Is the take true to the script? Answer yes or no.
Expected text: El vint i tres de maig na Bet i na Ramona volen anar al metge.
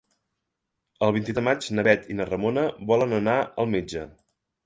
no